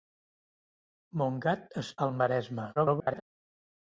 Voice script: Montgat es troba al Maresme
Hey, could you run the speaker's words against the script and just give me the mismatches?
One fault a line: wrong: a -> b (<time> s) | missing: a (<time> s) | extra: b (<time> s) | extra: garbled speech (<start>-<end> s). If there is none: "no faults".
missing: troba (1.9 s)
extra: garbled speech (2.8-3.2 s)